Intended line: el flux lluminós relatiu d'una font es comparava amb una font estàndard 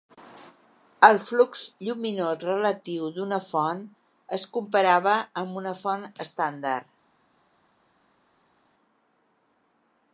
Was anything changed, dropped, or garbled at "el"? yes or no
no